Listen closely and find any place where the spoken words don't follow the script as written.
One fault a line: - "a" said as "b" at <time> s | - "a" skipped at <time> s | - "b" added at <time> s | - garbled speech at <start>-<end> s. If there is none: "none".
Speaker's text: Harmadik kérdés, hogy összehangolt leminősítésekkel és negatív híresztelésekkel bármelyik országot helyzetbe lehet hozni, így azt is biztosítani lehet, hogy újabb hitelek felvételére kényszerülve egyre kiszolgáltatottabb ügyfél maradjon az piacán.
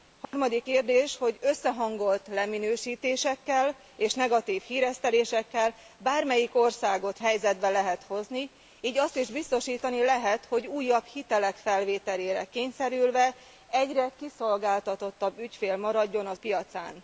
none